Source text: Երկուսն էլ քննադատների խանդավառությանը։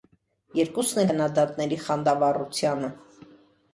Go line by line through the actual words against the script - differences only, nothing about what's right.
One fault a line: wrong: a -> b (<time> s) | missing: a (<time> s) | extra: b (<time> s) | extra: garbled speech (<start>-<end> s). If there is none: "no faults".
no faults